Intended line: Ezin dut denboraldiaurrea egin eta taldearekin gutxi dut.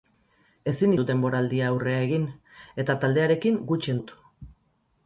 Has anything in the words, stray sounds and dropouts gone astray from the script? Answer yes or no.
no